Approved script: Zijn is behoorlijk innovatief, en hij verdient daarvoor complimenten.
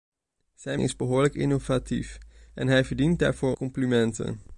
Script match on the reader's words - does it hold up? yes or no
yes